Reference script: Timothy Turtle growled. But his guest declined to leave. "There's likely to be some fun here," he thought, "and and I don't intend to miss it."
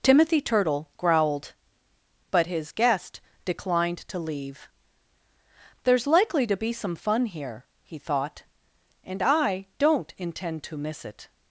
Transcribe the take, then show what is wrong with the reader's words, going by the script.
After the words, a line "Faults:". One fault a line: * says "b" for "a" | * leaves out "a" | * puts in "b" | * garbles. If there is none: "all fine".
Timothy Turtle growled. But his guest declined to leave. "There's likely to be some fun here," he thought, "and I don't intend to miss it."
Faults:
* leaves out "and"